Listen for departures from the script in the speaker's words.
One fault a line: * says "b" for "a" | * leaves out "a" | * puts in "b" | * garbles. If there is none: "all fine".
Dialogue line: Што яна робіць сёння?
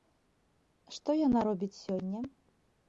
all fine